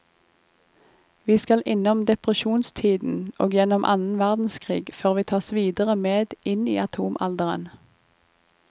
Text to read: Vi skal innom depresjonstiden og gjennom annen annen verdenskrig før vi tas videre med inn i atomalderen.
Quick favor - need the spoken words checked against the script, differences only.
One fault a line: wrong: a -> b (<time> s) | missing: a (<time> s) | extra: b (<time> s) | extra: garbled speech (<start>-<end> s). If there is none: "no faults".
missing: annen (4.2 s)